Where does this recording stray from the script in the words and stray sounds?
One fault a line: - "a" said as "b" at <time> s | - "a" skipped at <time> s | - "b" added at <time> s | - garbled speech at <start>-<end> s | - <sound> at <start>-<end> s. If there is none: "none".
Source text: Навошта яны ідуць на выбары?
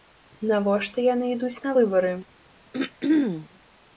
- throat clearing at 2.7-3.5 s